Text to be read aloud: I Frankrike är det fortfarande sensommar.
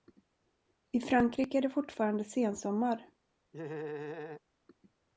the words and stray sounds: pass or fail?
fail